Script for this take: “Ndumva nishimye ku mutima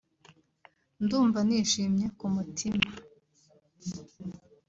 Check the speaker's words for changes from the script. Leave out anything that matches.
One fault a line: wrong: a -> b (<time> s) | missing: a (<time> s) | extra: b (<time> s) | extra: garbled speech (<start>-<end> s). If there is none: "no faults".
no faults